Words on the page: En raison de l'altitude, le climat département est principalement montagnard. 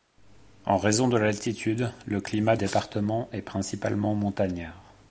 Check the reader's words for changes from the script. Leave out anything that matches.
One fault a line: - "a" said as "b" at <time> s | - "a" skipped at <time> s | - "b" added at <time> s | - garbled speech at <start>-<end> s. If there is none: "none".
none